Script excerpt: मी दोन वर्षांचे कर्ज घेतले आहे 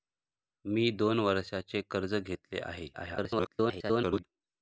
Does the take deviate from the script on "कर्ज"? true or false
false